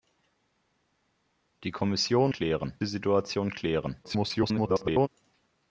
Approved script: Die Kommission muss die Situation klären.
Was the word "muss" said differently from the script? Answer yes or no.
yes